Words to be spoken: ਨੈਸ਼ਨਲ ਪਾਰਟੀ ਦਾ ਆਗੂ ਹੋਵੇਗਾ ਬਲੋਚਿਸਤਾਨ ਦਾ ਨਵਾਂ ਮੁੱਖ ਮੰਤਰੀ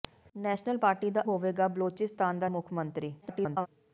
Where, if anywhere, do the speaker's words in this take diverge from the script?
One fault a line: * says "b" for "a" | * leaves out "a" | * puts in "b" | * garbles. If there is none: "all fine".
* leaves out "ਆਗੂ"
* leaves out "ਨਵਾਂ"
* garbles